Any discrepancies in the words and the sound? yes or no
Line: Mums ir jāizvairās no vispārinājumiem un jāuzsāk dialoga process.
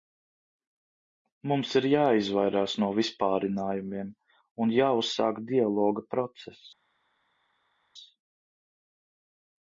no